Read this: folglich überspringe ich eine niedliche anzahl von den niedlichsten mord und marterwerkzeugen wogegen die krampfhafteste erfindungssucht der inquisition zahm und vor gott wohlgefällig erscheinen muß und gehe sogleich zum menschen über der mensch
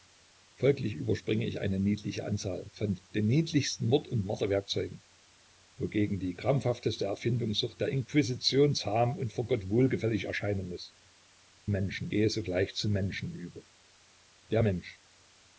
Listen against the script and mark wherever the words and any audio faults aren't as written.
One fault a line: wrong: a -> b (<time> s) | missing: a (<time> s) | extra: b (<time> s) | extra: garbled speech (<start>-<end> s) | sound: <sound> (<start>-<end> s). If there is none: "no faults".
wrong: und -> menschen (11.7 s)